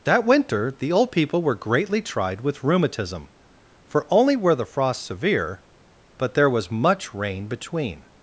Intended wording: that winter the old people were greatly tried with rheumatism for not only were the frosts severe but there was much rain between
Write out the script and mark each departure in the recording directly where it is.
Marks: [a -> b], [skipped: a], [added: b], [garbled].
that winter the old people were greatly tried with rheumatism for [skipped: not] only were the frosts severe but there was much rain between